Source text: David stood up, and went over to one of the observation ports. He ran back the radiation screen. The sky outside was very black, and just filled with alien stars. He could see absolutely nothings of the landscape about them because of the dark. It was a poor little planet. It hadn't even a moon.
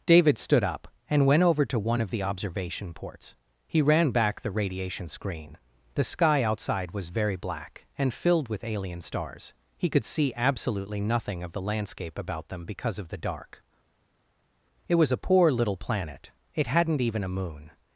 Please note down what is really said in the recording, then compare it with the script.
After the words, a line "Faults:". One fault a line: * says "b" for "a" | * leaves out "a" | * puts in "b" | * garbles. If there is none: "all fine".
David stood up, and went over to one of the observation ports. He ran back the radiation screen. The sky outside was very black, and filled with alien stars. He could see absolutely nothing of the landscape about them because of the dark. It was a poor little planet. It hadn't even a moon.
Faults:
* leaves out "just"
* says "nothing" for "nothings"